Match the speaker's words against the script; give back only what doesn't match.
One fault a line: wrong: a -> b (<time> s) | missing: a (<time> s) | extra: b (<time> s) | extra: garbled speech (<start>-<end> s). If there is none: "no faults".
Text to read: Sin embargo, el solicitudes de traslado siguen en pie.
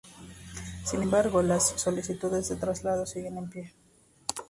wrong: el -> las (1.4 s)